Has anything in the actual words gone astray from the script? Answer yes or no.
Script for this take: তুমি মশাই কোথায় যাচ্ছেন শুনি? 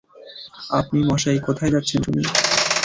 yes